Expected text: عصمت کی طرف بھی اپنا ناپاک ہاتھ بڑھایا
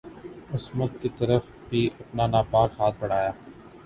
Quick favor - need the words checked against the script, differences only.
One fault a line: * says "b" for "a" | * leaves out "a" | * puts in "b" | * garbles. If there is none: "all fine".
all fine